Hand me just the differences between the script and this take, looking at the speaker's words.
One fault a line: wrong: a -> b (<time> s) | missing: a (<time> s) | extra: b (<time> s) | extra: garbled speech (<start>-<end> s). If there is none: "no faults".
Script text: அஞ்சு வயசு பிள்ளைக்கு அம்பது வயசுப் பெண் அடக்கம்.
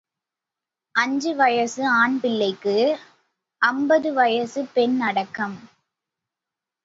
extra: ஆண் (1.9 s)